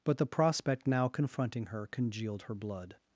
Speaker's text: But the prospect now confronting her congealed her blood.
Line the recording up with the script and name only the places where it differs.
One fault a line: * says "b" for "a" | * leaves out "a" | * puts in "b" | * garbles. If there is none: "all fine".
all fine